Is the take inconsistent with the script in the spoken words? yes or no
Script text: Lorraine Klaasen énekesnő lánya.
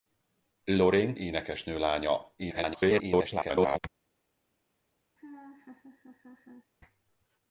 yes